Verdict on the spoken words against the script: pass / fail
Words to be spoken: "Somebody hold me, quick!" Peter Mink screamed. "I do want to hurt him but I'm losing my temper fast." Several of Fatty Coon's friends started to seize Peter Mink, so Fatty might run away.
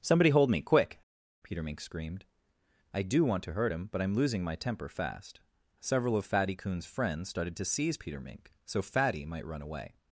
pass